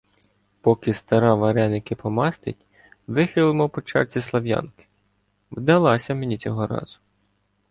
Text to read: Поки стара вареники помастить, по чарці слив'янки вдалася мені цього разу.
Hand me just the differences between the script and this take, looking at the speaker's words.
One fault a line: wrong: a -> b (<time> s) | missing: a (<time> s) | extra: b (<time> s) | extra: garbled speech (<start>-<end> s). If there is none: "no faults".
extra: вихилимо (3.1 s)